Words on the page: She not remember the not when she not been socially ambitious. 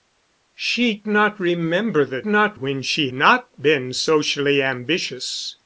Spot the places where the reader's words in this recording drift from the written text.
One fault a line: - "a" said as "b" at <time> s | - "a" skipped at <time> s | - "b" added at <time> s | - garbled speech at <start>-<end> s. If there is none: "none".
none